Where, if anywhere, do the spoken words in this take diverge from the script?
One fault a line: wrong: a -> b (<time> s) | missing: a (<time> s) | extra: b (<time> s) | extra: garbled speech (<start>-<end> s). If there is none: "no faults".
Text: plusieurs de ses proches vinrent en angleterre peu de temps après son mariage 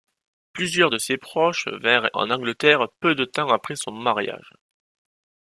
no faults